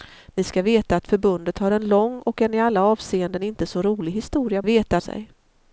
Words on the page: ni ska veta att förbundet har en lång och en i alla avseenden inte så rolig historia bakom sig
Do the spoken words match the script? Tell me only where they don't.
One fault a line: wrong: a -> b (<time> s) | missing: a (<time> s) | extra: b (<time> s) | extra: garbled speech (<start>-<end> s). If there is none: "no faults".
wrong: bakom -> veta (4.6 s)